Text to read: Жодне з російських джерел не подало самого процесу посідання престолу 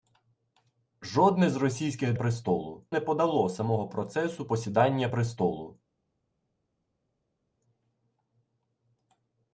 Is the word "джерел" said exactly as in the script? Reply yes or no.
no